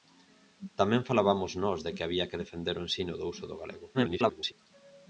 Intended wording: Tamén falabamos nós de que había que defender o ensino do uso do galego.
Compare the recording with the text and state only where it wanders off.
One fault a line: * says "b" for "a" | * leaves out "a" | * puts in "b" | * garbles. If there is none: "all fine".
* garbles